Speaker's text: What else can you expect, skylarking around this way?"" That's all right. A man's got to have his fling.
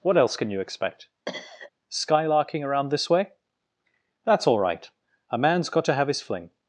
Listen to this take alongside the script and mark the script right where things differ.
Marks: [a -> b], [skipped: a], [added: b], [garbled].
What else can you expect, skylarking around this way?"" That's all right. A man's got to have his fling.